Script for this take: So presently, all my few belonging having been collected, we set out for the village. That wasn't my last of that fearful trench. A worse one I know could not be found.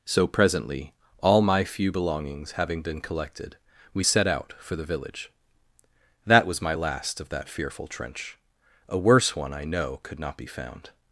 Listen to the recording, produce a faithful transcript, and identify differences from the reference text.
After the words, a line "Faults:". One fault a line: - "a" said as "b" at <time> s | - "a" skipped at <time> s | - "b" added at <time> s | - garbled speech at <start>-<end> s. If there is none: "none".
So presently, all my few belongings having been collected, we set out for the village. That was my last of that fearful trench. A worse one I know could not be found.
Faults:
- "belonging" said as "belongings" at 1.9 s
- "wasn't" said as "was" at 6.4 s